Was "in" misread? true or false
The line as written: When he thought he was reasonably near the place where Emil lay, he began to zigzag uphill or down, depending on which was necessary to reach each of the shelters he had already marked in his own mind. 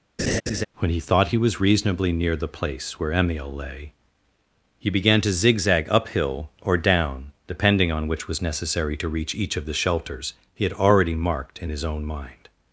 false